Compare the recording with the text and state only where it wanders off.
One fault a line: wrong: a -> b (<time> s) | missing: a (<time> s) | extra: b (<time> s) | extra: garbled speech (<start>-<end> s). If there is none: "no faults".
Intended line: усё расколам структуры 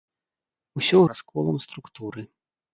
no faults